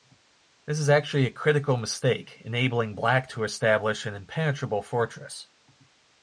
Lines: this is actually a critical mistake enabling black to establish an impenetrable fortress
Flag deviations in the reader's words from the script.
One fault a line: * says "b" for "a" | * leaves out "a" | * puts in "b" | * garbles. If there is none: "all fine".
all fine